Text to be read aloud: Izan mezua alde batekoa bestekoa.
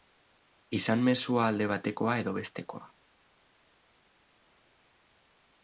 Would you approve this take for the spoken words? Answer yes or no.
no